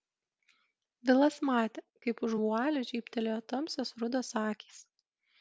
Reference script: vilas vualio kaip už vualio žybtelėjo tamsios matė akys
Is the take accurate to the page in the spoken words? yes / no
no